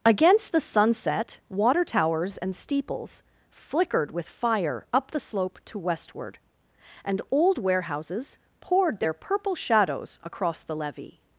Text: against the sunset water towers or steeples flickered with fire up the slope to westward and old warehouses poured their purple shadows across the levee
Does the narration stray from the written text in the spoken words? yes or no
yes